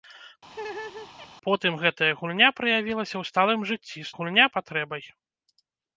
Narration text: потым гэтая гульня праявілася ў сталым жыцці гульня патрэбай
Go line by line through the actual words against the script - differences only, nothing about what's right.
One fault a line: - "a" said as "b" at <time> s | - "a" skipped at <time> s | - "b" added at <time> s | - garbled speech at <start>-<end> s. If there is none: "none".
none